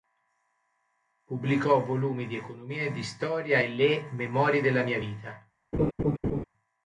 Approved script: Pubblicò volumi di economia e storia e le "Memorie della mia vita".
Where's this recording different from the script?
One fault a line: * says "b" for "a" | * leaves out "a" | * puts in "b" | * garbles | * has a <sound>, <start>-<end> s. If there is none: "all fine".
* puts in "di"
* has a laugh, 5.7-6.4 s